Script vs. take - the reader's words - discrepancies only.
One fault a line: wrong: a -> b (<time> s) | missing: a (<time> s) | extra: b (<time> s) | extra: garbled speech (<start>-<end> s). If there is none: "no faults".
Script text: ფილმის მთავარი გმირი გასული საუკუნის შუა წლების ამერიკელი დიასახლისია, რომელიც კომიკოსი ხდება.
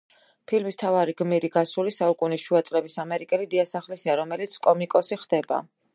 no faults